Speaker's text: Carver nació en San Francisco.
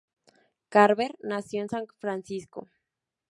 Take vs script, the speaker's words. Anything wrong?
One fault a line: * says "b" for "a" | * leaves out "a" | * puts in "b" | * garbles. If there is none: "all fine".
all fine